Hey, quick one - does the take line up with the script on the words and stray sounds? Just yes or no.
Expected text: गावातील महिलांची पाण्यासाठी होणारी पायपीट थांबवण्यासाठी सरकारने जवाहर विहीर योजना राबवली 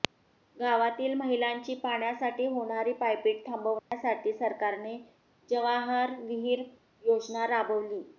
no